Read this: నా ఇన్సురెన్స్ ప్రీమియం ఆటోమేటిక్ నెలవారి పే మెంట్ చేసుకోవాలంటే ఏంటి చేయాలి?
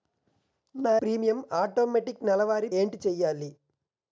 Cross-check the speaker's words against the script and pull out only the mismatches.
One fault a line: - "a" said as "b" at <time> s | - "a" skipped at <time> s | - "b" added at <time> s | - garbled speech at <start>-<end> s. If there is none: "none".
- "ఇన్సురెన్స్" skipped at 0.9 s
- "పే మెంట్ చేసుకోవాలంటే" skipped at 2.7 s